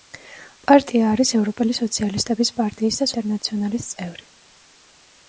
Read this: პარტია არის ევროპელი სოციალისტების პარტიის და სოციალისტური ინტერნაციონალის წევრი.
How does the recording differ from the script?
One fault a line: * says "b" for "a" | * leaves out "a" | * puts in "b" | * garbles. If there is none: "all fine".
* leaves out "სოციალისტური"